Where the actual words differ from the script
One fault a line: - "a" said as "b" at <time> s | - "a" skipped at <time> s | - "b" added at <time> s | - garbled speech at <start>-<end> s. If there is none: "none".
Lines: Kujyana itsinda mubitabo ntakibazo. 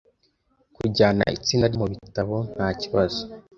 none